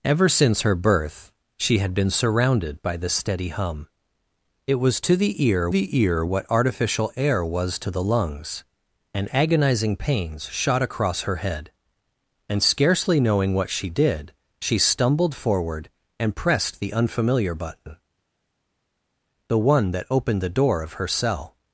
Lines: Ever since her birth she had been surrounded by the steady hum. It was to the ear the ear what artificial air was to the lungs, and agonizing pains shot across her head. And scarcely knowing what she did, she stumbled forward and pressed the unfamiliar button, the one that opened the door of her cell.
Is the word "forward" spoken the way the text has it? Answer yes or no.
yes